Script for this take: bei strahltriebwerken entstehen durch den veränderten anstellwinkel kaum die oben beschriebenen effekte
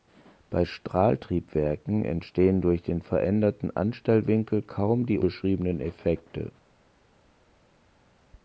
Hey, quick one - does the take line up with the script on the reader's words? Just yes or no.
no